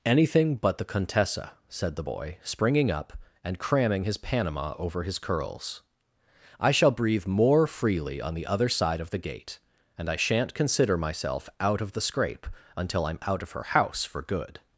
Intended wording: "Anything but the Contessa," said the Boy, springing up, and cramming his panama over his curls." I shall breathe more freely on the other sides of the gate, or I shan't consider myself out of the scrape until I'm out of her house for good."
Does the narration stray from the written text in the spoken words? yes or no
yes